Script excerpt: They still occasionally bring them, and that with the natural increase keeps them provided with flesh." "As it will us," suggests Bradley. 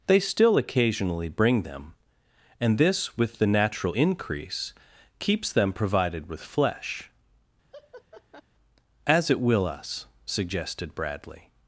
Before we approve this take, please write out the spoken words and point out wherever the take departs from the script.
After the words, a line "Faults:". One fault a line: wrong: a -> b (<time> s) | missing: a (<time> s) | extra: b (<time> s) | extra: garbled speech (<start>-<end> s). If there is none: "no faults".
They still occasionally bring them, and this with the natural increase keeps them provided with flesh." "As it will us," suggested Bradley.
Faults:
wrong: that -> this (2.8 s)
wrong: suggests -> suggested (10.3 s)